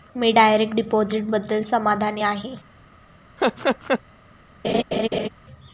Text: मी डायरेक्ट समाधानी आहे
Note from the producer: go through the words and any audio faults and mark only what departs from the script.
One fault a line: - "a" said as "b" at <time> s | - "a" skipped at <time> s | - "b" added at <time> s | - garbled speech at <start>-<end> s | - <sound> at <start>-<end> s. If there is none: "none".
- "डिपॉझिटबद्दल" added at 0.7 s
- laugh at 3.4-4.0 s
- laugh at 4.6-5.3 s